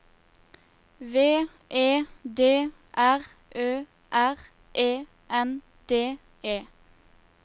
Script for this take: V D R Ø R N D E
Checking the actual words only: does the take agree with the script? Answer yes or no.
no